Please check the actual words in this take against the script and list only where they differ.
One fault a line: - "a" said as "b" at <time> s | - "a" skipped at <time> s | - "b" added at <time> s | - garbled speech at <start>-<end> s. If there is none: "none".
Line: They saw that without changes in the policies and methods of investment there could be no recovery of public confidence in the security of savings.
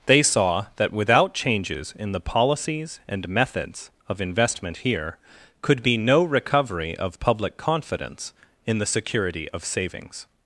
- "there" said as "here" at 4.8 s